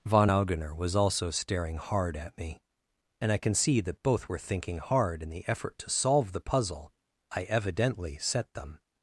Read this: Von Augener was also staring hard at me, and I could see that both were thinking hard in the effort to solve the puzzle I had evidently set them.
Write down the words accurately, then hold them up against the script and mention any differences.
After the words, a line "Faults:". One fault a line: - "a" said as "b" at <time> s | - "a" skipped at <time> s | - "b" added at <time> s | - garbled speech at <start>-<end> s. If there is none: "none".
Von Augener was also staring hard at me, and I can see that both were thinking hard in the effort to solve the puzzle I evidently set them.
Faults:
- "could" said as "can" at 3.4 s
- "had" skipped at 7.4 s